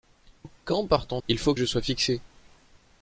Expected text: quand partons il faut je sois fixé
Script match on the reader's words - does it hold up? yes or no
yes